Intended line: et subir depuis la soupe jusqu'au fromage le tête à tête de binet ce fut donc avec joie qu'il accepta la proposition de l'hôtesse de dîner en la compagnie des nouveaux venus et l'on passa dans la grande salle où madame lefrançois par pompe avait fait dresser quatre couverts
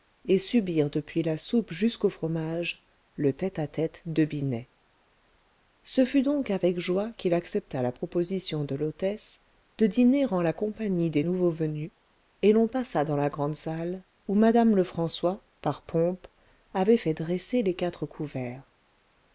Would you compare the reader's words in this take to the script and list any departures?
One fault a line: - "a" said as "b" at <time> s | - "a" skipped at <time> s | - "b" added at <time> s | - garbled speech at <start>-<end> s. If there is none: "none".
- "les" added at 17.6 s